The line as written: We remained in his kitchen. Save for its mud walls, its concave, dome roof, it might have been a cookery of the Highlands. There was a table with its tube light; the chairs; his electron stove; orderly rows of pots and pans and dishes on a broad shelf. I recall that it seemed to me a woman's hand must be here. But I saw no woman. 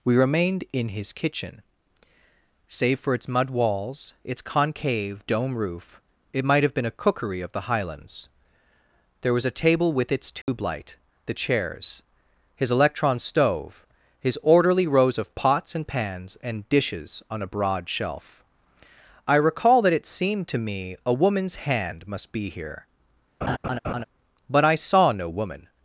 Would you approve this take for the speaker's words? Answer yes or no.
no